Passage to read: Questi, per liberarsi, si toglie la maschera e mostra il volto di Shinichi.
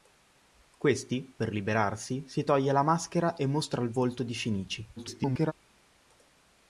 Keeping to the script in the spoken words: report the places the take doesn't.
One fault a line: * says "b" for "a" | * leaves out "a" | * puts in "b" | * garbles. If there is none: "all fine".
* garbles